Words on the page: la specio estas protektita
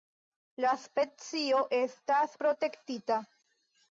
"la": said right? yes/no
yes